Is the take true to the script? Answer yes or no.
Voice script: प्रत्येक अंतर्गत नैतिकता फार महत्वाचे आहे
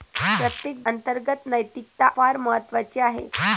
yes